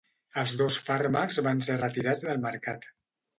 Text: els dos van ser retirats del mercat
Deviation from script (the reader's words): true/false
true